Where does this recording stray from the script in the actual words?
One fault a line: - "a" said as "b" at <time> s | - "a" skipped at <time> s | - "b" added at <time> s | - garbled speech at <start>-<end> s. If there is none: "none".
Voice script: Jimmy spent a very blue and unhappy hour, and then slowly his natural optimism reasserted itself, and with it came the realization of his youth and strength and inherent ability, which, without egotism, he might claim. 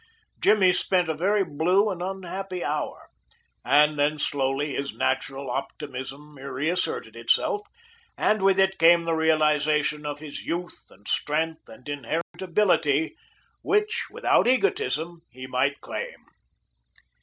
none